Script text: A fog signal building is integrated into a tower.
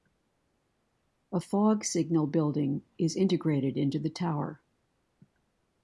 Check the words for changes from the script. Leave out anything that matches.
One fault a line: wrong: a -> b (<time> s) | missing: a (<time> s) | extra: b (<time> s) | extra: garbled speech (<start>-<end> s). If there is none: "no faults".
wrong: a -> the (4.0 s)